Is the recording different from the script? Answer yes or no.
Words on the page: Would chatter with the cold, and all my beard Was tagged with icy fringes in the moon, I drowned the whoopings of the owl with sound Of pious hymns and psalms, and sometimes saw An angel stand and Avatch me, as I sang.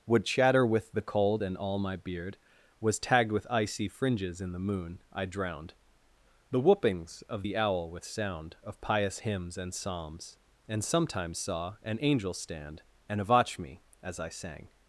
no